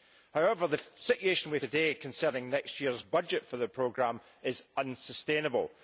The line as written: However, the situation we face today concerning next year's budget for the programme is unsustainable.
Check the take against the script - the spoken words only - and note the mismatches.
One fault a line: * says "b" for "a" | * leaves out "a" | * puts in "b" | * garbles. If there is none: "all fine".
* leaves out "face"